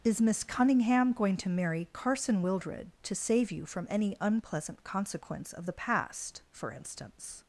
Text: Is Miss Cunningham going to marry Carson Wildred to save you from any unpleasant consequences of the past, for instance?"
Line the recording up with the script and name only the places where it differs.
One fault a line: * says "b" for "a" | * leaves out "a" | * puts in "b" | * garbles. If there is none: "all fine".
* says "consequence" for "consequences"